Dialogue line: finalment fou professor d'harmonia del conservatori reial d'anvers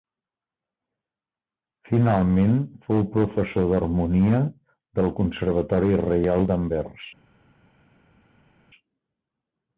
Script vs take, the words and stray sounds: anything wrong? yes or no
no